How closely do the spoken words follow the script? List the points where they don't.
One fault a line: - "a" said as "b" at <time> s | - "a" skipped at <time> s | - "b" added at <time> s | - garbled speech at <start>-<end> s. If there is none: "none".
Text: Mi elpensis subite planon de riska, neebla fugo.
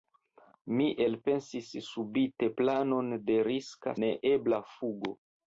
none